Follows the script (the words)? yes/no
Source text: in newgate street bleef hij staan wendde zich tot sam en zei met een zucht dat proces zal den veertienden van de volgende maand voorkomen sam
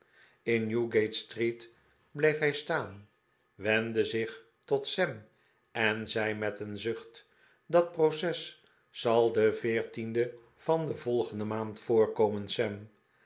yes